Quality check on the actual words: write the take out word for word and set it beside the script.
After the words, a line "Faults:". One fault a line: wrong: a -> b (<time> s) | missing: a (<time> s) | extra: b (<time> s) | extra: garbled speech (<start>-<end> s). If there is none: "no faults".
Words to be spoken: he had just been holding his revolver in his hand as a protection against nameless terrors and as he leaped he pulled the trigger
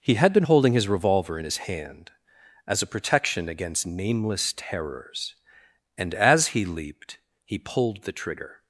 he had been holding his revolver in his hand as a protection against nameless terrors and as he leaped he pulled the trigger
Faults:
missing: just (0.3 s)